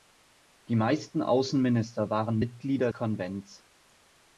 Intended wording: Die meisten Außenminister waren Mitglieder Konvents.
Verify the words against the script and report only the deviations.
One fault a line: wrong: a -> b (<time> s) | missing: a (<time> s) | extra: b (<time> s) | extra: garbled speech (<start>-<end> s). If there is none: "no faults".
no faults